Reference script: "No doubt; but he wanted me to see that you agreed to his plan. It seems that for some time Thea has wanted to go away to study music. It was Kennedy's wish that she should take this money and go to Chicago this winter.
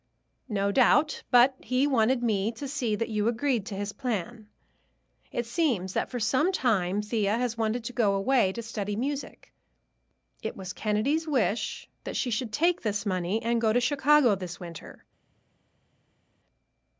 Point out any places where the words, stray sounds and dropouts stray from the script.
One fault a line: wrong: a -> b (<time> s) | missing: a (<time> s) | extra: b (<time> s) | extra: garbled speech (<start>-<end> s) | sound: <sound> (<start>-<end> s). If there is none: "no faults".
no faults